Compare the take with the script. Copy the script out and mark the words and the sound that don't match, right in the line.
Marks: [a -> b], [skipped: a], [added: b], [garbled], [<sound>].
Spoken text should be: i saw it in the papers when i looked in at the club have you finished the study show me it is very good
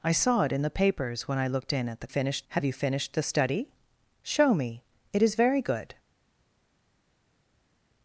i saw it in the papers when i looked in at the [club -> finished] have you finished the study show me it is very good